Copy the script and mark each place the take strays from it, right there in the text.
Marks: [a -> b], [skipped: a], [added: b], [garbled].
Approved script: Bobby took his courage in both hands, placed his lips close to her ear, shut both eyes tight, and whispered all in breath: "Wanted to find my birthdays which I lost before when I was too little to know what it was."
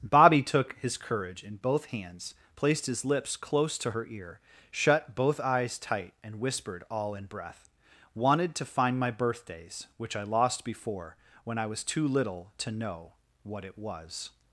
Bobby took his courage in both hands, placed his lips close to her ear, shut both eyes tight, and whispered all in breath: "Wanted to find my birthdays which I lost before when I was too little to know what it was."